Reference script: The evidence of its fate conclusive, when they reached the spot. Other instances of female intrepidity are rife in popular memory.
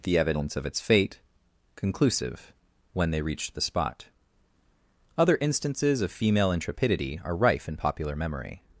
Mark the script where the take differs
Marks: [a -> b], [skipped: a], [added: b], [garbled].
The evidence of its fate conclusive, when they reached the spot. Other instances of female intrepidity are rife in popular memory.